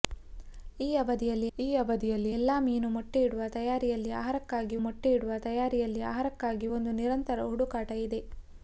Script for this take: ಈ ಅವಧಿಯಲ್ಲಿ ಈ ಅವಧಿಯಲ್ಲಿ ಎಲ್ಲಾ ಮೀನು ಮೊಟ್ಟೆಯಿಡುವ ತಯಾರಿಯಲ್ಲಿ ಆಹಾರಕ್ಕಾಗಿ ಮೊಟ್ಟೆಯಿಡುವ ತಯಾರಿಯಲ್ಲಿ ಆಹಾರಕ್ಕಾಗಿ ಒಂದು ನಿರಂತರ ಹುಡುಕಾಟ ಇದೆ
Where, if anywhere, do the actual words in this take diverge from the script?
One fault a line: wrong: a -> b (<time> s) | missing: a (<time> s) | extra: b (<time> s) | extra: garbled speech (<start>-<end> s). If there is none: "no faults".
no faults